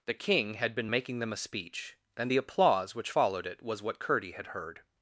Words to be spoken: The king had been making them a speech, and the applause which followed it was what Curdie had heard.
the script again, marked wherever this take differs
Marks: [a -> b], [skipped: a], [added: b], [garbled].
The king had been making them a speech, and the applause which followed it was what Curdie had heard.